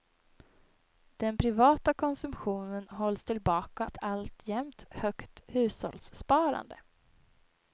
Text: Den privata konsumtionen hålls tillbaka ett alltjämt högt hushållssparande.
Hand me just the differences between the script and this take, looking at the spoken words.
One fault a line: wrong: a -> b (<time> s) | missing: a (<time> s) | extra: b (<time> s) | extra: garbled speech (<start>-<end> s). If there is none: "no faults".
no faults